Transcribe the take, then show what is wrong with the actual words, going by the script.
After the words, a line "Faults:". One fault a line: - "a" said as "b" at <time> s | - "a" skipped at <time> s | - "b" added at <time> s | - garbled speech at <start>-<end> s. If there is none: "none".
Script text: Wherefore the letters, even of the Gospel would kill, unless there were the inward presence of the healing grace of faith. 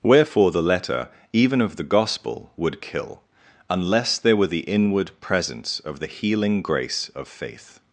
Wherefore the letter, even of the Gospel would kill, unless there were the inward presence of the healing grace of faith.
Faults:
- "letters" said as "letter" at 0.6 s